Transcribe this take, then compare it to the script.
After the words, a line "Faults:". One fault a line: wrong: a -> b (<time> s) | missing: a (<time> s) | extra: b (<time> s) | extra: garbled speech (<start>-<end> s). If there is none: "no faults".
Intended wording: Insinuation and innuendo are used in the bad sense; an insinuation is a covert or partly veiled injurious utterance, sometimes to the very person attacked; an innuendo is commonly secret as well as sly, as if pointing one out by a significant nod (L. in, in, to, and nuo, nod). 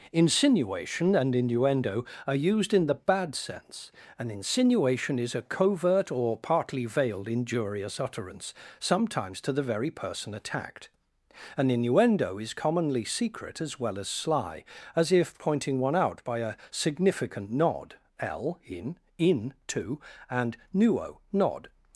Insinuation and innuendo are used in the bad sense; an insinuation is a covert or partly veiled injurious utterance, sometimes to the very person attacked; an innuendo is commonly secret as well as sly, as if pointing one out by a significant nod (L. in, in, to, and nuo, nod).
Faults:
no faults